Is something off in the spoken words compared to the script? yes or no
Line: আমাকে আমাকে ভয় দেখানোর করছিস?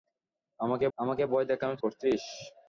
no